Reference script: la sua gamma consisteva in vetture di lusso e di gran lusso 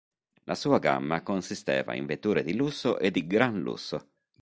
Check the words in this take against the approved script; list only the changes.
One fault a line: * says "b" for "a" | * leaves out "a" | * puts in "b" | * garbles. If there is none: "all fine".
all fine